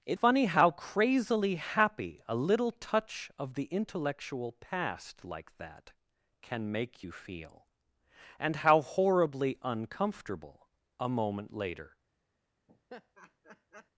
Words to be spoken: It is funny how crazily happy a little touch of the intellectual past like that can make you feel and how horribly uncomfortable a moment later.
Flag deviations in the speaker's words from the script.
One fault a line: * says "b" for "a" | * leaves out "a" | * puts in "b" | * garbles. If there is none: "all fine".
* leaves out "is"